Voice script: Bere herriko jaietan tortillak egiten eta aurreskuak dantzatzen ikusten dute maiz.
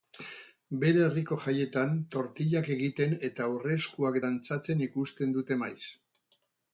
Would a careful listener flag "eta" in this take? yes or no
no